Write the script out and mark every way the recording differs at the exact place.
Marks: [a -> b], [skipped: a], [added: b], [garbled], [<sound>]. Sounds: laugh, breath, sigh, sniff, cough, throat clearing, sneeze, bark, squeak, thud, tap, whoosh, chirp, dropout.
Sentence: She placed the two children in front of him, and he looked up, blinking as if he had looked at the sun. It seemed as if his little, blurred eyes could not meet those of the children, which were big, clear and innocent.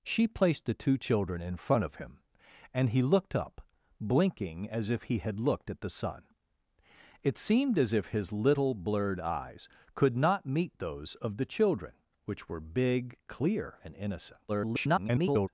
She placed the two children in front of him, and he looked up, blinking as if he had looked at the sun. It seemed as if his little, blurred eyes could not meet those of the children, which were big, clear and innocent. [garbled]